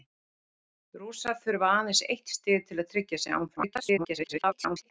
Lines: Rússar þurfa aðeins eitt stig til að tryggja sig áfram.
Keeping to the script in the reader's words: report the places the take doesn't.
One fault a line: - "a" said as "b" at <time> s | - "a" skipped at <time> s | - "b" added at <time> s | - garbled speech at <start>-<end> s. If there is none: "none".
- garbled speech at 3.6-4.9 s